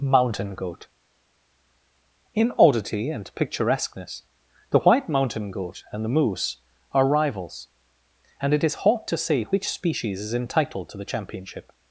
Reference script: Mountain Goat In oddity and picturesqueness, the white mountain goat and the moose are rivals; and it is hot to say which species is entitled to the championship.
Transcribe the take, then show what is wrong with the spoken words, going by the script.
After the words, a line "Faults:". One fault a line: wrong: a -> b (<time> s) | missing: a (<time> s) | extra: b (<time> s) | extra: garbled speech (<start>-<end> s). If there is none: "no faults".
Mountain Goat In oddity and picturesqueness, the white mountain goat and the moose are rivals; and it is hot to say which species is entitled to the championship.
Faults:
no faults